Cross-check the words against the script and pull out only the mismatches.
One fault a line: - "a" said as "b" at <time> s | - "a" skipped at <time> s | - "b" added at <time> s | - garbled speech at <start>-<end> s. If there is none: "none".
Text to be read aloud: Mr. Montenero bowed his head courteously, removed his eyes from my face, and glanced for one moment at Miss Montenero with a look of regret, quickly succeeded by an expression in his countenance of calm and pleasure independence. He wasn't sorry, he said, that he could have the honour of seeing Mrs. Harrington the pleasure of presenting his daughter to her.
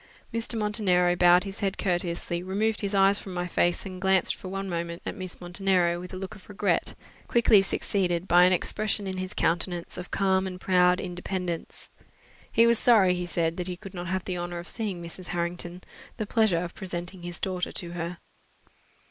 - "pleasure" said as "proud" at 10.6 s
- "wasn't" said as "was" at 12.7 s
- "not" added at 13.9 s